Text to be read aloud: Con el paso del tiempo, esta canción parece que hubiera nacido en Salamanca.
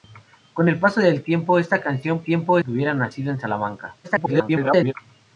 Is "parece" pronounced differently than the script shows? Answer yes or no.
yes